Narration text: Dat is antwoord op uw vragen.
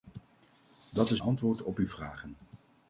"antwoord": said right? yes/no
yes